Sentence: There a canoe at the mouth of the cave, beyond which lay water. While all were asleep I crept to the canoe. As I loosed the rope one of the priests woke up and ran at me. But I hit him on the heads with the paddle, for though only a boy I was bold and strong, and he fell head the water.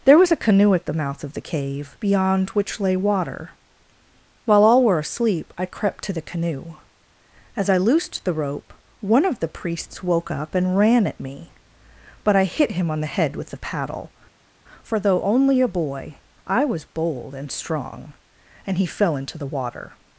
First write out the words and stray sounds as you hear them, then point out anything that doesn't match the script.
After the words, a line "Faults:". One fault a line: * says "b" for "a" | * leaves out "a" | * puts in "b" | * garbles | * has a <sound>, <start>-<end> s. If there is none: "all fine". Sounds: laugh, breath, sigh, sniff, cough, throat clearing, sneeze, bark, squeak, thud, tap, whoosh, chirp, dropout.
There was a canoe at the mouth of the cave, beyond which lay water. While all were asleep I crept to the canoe. As I loosed the rope one of the priests woke up and ran at me. But I hit him on the head with the paddle, for though only a boy I was bold and strong, and he fell into the water.
Faults:
* puts in "was"
* says "head" for "heads"
* says "into" for "head"